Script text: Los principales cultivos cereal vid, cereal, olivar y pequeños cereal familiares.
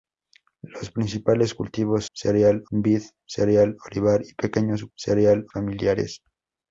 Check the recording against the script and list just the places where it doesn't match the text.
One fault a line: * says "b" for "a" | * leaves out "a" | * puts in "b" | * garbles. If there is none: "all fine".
all fine